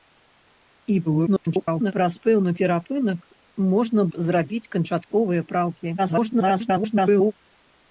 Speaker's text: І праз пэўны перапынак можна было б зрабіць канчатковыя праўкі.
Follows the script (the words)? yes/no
no